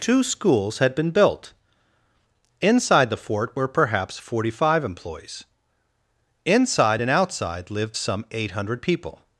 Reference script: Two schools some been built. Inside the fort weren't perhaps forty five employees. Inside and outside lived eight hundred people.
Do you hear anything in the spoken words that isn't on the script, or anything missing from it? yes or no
yes